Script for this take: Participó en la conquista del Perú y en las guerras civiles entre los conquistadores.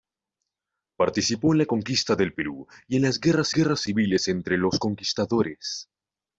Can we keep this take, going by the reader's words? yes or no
no